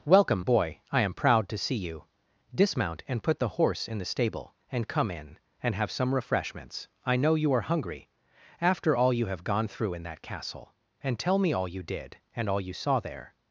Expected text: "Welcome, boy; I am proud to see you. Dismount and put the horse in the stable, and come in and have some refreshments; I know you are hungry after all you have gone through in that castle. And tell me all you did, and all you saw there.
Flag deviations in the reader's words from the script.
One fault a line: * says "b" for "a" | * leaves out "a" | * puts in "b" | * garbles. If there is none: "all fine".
all fine